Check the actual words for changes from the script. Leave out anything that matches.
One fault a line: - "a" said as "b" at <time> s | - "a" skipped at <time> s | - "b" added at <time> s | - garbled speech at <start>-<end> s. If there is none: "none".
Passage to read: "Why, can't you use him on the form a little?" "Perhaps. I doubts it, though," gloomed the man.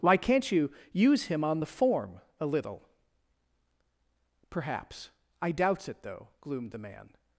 none